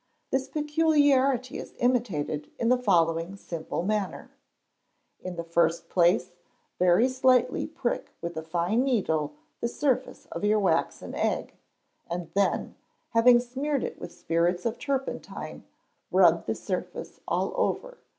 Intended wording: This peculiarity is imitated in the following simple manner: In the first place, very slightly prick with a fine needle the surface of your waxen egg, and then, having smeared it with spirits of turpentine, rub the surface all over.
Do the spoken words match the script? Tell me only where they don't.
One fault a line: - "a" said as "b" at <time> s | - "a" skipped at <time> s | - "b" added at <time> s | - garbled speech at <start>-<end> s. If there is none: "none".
none